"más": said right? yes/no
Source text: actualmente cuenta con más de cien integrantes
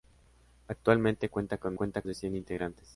no